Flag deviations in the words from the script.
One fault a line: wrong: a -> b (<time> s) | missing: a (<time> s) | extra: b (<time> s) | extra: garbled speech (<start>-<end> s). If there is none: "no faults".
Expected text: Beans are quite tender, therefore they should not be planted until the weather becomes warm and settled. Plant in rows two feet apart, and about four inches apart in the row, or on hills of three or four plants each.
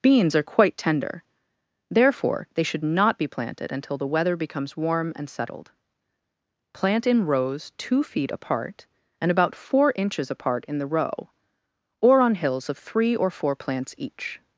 no faults